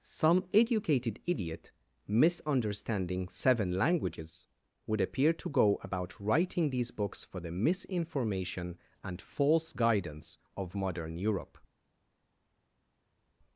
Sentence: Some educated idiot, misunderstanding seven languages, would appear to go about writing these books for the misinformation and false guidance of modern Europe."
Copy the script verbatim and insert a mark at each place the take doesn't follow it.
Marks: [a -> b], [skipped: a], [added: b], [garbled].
Some educated idiot, misunderstanding seven languages, would appear to go about writing these books for the misinformation and false guidance of modern Europe."